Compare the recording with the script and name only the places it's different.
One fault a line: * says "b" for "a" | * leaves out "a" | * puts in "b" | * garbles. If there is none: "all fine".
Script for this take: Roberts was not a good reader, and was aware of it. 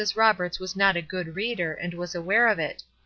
all fine